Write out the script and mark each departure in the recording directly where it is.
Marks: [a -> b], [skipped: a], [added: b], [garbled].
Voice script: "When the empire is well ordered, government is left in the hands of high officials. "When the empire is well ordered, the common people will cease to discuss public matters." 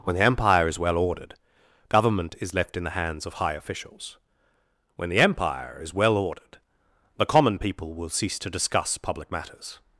"When the empire is well ordered, government is left in the hands of high officials. "When the empire is well ordered, the common people will cease to discuss public matters."